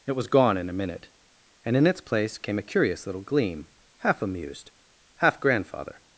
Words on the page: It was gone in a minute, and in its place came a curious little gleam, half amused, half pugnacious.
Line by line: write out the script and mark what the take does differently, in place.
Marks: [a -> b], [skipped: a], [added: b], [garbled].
It was gone in a minute, and in its place came a curious little gleam, half amused, half [pugnacious. -> grandfather]